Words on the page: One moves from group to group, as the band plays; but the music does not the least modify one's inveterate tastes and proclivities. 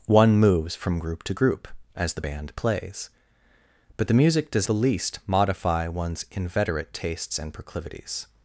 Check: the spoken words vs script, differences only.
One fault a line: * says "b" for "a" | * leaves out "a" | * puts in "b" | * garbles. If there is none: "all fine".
* leaves out "not"